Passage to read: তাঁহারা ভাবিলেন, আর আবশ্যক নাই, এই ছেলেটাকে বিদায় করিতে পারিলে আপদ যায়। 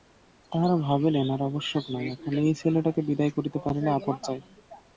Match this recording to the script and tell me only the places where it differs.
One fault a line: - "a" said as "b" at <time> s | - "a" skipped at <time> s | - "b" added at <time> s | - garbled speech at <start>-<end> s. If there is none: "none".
- "এখন" added at 2.1 s